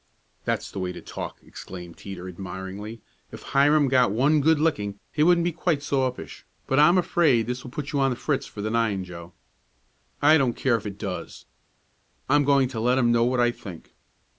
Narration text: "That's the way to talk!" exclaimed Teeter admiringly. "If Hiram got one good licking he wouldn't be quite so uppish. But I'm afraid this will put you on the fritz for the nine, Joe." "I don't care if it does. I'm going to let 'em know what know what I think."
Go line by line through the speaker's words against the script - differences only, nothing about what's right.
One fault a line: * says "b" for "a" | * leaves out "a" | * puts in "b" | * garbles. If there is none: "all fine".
* leaves out "know what"